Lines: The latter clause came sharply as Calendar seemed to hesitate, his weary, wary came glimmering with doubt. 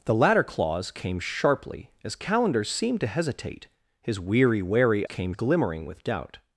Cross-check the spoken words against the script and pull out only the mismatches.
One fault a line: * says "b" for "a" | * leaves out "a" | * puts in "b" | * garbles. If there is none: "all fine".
all fine